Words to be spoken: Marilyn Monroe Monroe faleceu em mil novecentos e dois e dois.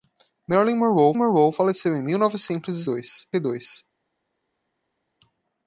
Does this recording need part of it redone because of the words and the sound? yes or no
no